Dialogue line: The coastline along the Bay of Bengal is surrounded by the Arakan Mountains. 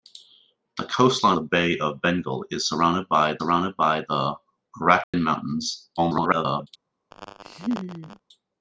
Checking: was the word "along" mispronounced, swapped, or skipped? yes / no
yes